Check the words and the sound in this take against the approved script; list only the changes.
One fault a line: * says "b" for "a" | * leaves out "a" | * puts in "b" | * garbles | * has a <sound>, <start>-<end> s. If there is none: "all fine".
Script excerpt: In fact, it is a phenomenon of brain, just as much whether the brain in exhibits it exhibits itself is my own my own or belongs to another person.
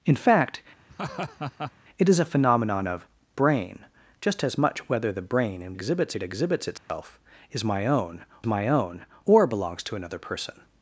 * has a laugh, 0.9-1.7 s
* has a dropout, 6.8-6.9 s